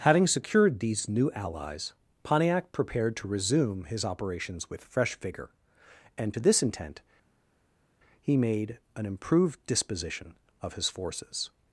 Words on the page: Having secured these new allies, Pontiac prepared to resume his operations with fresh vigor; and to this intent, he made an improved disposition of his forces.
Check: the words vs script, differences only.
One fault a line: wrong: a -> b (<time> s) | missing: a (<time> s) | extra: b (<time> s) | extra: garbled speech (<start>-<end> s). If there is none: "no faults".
no faults